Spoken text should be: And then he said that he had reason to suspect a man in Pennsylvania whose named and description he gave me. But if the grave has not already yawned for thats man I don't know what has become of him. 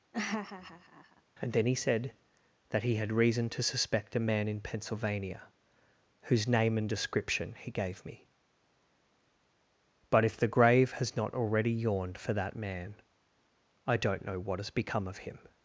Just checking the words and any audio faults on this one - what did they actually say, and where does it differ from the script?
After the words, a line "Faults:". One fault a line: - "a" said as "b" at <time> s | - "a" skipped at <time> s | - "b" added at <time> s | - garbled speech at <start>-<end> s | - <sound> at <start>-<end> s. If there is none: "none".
And then he said that he had reason to suspect a man in Pennsylvania whose name and description he gave me. But if the grave has not already yawned for that man I don't know what has become of him.
Faults:
- laugh at 0.1-1.2 s
- "named" said as "name" at 6.5 s
- "thats" said as "that" at 12.3 s